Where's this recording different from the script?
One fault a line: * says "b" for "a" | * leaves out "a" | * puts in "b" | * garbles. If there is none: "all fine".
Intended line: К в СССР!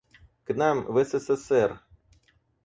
* puts in "нам"